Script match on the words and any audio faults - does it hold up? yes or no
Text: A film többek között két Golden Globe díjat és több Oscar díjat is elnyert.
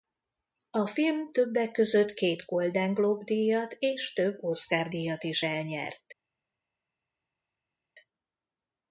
yes